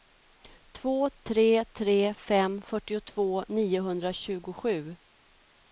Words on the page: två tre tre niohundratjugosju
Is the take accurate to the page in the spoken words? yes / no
no